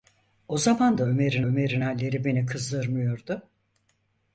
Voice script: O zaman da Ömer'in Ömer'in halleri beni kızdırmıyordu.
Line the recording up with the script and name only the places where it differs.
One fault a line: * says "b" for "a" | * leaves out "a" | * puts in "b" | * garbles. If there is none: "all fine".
all fine